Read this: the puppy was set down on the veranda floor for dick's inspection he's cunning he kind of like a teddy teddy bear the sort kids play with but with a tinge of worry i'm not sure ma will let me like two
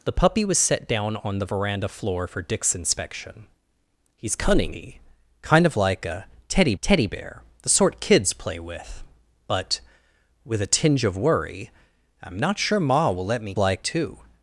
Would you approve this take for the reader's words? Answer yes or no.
yes